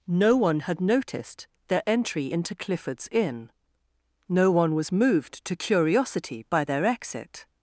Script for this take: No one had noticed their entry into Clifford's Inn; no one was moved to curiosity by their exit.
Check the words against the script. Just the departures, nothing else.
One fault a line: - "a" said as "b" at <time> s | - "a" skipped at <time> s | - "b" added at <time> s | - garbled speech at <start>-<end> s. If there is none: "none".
none